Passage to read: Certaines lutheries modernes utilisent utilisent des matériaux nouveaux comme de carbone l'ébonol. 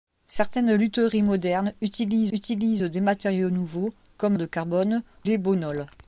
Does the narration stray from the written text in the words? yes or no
no